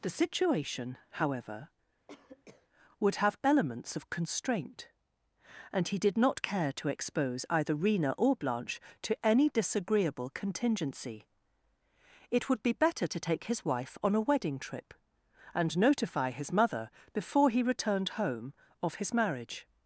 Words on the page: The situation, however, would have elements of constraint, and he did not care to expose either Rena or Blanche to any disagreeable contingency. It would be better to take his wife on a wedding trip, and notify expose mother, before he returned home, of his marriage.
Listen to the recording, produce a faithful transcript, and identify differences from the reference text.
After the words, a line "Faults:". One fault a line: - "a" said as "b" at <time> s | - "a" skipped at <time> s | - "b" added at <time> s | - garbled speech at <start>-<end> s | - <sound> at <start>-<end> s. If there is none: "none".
The situation, however, would have elements of constraint, and he did not care to expose either Rena or Blanche to any disagreeable contingency. It would be better to take his wife on a wedding trip, and notify his mother, before he returned home, of his marriage.
Faults:
- cough at 2.1-2.7 s
- "expose" said as "his" at 16.3 s